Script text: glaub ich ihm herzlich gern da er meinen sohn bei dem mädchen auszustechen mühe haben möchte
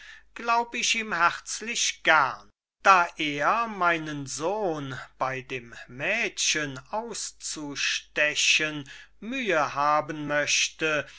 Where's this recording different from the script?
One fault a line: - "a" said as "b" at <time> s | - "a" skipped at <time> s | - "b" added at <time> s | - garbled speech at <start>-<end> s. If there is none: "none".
none